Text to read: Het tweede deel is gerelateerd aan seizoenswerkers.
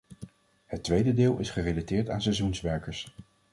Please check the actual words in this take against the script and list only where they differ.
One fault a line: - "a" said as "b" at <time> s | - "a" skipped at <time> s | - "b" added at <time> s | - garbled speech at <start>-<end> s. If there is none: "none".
none